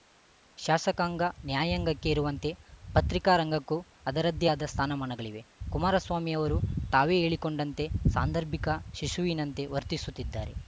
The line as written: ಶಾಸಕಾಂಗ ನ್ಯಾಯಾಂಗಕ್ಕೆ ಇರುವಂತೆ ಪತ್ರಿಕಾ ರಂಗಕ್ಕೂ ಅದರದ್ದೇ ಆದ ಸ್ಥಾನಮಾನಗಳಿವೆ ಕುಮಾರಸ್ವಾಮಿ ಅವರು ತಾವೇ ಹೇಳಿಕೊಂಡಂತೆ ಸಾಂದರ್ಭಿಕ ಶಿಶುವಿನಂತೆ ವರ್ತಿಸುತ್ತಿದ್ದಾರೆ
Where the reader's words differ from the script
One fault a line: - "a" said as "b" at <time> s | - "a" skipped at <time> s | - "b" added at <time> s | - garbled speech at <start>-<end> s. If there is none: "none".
none